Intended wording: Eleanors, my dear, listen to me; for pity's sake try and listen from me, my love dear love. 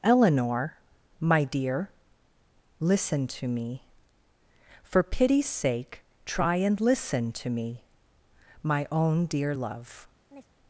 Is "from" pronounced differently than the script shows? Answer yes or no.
yes